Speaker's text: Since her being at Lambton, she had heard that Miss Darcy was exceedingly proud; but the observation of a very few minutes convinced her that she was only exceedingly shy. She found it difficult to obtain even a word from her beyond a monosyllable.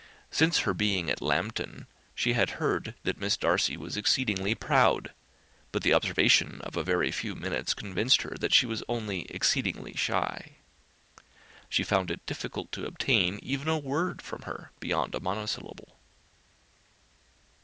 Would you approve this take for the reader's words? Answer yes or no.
yes